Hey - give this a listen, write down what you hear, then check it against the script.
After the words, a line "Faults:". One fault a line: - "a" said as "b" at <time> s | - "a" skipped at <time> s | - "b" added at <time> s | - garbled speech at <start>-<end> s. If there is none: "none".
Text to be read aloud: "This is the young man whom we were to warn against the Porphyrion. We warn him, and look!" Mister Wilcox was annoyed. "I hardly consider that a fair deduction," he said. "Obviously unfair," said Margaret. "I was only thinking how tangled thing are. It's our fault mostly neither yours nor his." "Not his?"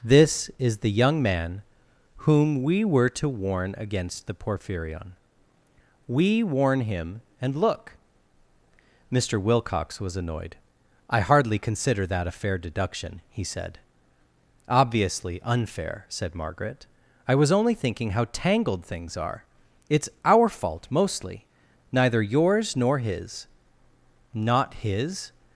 "This is the young man whom we were to warn against the Porphyrion. We warn him, and look!" Mister Wilcox was annoyed. "I hardly consider that a fair deduction," he said. "Obviously unfair," said Margaret. "I was only thinking how tangled things are. It's our fault mostly neither yours nor his." "Not his?"
Faults:
- "thing" said as "things" at 18.8 s